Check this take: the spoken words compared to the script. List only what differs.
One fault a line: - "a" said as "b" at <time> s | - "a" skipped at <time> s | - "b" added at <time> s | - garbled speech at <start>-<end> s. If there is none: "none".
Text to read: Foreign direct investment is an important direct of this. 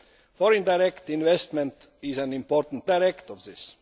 none